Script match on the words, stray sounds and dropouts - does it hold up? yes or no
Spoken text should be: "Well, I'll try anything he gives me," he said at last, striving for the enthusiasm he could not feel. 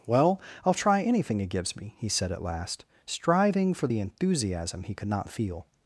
yes